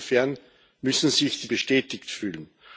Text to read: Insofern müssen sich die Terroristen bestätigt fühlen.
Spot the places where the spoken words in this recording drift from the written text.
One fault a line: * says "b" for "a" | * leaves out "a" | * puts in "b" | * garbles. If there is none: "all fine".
* leaves out "Terroristen"